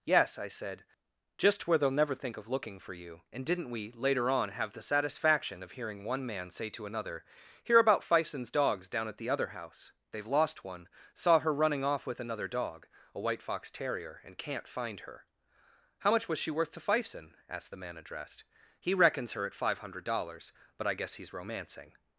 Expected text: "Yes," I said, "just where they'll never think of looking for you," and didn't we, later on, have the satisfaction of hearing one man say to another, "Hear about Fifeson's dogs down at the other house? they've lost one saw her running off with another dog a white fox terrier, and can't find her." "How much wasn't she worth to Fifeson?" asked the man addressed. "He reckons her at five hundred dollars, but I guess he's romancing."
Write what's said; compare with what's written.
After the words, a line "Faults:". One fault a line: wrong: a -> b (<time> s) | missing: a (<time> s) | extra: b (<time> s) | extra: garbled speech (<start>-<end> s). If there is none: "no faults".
"Yes," I said, "just where they'll never think of looking for you," and didn't we, later on, have the satisfaction of hearing one man say to another, "Hear about Fifeson's dogs down at the other house? they've lost one saw her running off with another dog a white fox terrier, and can't find her." "How much was she worth to Fifeson?" asked the man addressed. "He reckons her at five hundred dollars, but I guess he's romancing."
Faults:
wrong: wasn't -> was (16.3 s)